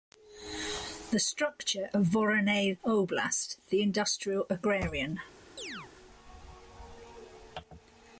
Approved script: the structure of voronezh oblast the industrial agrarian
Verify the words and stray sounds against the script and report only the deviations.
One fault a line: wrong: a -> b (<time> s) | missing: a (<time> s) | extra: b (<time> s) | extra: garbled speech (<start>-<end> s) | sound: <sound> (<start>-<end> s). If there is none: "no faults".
sound: chirp (5.6-5.9 s)